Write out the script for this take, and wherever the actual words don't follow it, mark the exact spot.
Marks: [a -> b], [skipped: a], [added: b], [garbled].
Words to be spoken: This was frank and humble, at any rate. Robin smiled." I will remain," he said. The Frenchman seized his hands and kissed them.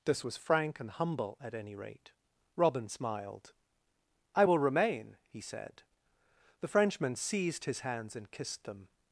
This was frank and humble, at any rate. Robin smiled." I will remain," he said. The Frenchman seized his hands and kissed them.